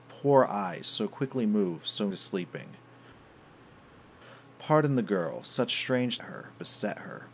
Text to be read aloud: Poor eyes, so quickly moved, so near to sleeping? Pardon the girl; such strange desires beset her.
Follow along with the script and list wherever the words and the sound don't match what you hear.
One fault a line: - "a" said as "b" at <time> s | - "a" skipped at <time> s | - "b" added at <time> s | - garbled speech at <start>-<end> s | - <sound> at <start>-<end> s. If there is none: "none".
- "near" skipped at 2.1 s
- "desires" said as "her" at 6.2 s